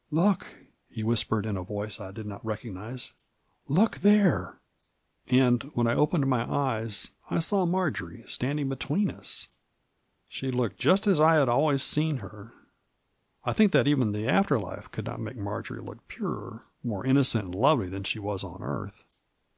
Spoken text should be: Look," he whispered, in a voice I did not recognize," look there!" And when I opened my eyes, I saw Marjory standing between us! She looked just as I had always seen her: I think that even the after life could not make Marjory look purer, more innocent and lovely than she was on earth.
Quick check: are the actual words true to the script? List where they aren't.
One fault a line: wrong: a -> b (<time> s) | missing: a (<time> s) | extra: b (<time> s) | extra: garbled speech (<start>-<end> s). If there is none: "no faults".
no faults